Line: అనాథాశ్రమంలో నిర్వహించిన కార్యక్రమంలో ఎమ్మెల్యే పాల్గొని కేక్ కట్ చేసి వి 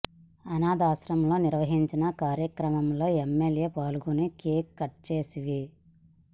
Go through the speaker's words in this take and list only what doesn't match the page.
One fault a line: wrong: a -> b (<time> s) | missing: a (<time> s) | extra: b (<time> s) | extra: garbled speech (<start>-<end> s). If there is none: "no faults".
no faults